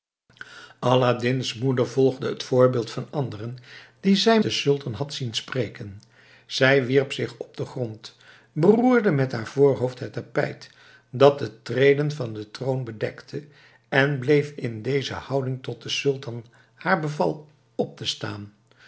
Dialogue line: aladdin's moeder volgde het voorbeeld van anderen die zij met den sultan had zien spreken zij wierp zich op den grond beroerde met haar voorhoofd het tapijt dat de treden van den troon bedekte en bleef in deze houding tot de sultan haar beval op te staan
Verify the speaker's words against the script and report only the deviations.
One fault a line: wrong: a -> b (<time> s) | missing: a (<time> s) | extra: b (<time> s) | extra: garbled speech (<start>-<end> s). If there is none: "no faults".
missing: met (4.4 s)